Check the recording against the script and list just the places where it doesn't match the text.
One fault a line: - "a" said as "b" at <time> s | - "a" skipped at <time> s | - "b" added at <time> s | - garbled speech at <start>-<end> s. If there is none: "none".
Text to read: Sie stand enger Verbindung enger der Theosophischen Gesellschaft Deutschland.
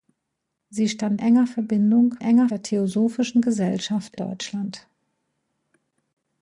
none